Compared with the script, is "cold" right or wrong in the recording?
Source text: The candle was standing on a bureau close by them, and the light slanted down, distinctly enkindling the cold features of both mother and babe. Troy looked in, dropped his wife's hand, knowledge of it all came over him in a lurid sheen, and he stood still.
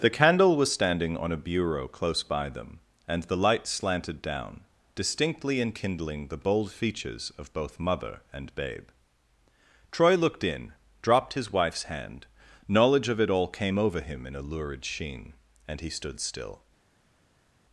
wrong